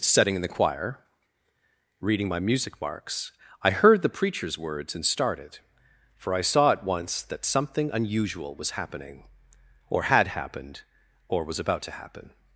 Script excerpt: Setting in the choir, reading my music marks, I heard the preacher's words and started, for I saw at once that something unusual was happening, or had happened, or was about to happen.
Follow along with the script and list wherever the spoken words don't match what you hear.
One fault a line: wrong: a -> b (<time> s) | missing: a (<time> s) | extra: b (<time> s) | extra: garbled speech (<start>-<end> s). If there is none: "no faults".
no faults